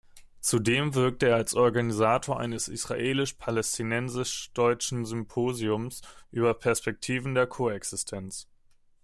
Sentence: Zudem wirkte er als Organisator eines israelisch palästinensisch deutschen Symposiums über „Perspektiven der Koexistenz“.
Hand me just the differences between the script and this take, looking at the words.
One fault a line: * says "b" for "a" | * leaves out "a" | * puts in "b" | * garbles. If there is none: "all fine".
all fine